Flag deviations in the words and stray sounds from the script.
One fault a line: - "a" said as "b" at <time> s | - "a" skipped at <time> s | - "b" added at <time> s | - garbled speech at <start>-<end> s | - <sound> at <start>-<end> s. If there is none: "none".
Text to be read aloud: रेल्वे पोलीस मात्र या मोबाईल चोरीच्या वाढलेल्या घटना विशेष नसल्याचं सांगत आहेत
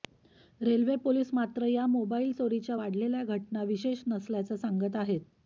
none